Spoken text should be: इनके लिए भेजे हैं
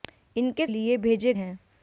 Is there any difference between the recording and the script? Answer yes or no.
no